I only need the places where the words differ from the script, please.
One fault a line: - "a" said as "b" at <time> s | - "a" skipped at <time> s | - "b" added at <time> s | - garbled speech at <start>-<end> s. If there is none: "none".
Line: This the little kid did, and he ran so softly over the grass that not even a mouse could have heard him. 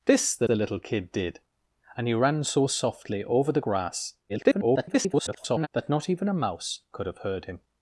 - "the" added at 0.4 s
- garbled speech at 4.3-5.7 s